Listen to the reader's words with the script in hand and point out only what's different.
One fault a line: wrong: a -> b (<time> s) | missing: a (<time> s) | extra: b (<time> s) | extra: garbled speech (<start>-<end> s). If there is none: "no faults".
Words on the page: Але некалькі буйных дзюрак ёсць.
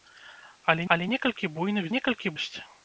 extra: але (0.9 s)
wrong: дзюрак -> некалькі (2.0 s)